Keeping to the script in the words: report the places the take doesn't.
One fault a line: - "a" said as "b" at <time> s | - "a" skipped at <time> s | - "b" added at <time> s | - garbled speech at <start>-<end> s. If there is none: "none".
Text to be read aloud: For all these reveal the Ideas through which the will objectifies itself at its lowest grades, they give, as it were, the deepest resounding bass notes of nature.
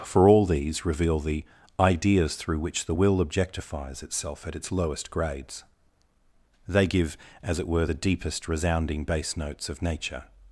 none